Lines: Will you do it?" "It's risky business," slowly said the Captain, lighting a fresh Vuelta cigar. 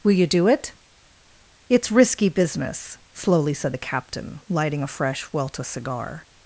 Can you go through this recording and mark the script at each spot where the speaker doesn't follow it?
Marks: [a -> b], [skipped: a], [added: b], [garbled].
Will you do it?" "It's risky business," slowly said the Captain, lighting a fresh Vuelta cigar.